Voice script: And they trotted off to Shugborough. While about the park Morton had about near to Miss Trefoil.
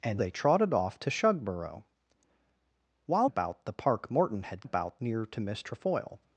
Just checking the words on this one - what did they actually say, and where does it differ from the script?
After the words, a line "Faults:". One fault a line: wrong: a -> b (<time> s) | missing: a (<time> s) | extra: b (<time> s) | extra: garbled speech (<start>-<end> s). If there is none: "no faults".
And they trotted off to Shugborough. While about the park Morton had about near to Miss Trefoil.
Faults:
no faults